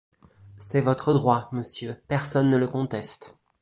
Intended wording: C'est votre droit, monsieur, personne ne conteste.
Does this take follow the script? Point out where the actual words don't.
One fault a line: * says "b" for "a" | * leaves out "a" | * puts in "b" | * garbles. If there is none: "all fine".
* puts in "le"